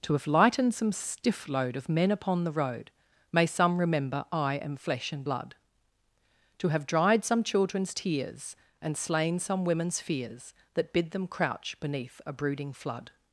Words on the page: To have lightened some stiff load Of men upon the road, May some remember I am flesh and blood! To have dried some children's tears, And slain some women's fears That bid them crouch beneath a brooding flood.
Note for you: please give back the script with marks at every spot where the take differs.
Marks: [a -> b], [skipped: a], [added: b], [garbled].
To have lightened some stiff load Of men upon the road, May some remember I am flesh and blood! To have dried some children's tears, And slain some women's fears That bid them crouch beneath a brooding flood.